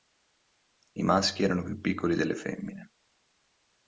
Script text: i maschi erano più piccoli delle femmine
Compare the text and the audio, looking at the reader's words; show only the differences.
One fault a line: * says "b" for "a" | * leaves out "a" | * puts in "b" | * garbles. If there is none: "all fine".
all fine